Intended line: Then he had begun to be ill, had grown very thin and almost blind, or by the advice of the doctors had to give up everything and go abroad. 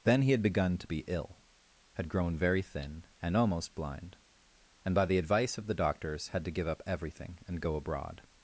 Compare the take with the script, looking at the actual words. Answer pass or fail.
fail